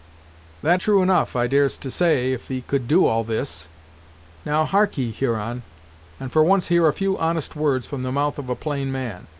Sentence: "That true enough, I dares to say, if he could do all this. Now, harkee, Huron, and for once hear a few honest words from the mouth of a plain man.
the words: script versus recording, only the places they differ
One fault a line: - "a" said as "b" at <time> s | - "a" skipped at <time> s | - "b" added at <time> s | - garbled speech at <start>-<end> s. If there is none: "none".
none